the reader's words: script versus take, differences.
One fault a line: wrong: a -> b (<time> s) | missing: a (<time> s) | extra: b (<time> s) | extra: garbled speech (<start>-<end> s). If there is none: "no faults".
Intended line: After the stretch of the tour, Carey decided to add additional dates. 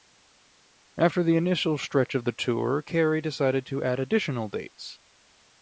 extra: initial (1.4 s)